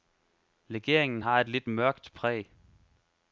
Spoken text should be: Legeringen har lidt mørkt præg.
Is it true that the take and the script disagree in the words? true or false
true